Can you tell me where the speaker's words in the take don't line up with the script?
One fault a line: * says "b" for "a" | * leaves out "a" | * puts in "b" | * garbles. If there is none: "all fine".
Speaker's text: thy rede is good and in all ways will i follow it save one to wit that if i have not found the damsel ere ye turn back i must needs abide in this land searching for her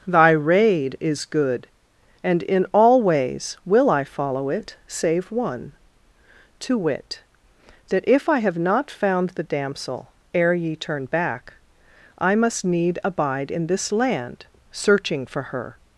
* says "need" for "needs"